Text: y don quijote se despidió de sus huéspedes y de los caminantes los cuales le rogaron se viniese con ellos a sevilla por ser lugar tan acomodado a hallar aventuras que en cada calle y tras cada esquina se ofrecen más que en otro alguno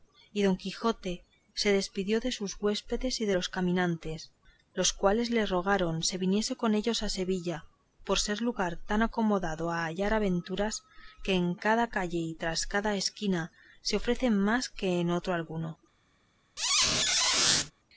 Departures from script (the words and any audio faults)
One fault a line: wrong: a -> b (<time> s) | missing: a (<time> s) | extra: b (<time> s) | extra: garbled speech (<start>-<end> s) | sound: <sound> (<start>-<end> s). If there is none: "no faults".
sound: squeak (16.6-17.7 s)